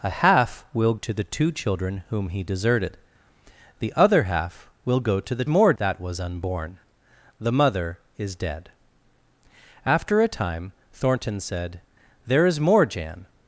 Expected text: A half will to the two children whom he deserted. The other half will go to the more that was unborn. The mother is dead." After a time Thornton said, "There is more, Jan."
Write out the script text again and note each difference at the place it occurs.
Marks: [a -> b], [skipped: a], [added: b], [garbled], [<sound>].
A half will to the two children whom he deserted. The other half will go to the more that was unborn. The mother is dead." After a time Thornton said, "There is more, Jan."